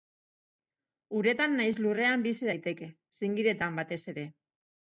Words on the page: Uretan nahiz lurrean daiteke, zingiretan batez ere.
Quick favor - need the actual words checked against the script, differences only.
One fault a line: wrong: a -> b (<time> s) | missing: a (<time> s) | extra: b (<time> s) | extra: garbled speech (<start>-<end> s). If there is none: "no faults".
extra: bizi (2.3 s)